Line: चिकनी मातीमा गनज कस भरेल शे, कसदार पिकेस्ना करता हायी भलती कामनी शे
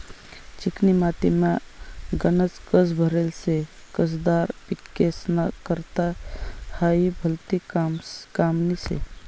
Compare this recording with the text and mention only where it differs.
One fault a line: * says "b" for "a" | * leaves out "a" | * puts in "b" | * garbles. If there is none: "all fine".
all fine